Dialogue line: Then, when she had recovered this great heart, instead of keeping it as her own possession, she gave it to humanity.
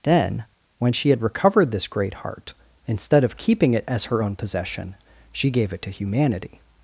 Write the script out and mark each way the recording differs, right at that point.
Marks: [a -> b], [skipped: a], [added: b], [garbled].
Then, when she had recovered this great heart, instead of keeping it as her own possession, she gave it to humanity.